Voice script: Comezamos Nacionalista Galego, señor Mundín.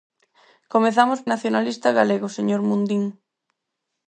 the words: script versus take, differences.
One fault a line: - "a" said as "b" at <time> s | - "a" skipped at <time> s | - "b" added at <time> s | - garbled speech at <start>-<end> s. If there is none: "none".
none